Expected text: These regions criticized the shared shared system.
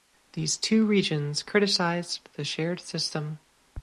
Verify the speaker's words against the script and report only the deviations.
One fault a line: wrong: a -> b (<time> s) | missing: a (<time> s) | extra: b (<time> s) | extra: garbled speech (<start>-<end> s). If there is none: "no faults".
extra: two (0.6 s)
missing: shared (2.8 s)